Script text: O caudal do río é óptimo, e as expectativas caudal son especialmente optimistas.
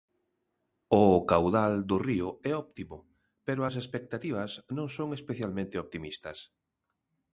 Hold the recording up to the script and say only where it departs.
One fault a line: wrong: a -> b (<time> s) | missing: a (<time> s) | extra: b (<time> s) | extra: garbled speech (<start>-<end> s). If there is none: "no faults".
wrong: e -> pero (3.5 s)
wrong: caudal -> non (4.8 s)